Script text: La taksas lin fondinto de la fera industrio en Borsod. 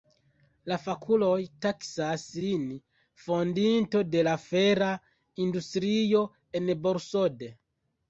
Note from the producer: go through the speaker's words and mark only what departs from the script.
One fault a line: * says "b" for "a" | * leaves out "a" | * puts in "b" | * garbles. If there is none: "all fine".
* puts in "fakuloj"